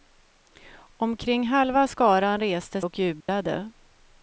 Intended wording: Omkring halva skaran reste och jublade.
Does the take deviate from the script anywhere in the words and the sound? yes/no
yes